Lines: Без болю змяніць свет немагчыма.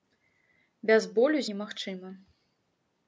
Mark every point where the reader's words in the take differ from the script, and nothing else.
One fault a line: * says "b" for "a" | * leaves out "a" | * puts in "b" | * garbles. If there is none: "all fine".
* leaves out "змяніць свет"